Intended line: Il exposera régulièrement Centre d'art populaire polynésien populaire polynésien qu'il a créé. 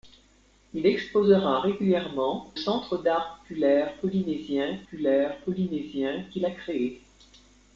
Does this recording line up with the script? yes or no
yes